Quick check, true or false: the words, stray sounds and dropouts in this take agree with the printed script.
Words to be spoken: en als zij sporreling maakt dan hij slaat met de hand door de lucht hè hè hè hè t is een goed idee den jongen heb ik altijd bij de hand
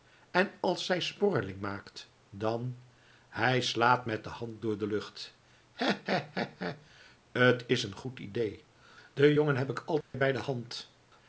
false